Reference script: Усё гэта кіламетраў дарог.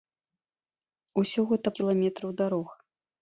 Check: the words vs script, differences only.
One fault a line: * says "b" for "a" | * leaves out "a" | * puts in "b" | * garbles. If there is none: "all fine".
all fine